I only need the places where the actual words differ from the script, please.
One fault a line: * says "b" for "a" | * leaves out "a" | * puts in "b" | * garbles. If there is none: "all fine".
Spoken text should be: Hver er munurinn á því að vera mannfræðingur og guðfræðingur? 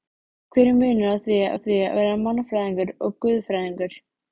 * puts in "á því að"